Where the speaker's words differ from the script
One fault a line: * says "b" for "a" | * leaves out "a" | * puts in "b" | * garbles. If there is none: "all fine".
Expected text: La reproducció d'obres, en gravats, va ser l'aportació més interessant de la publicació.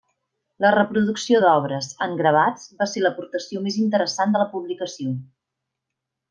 all fine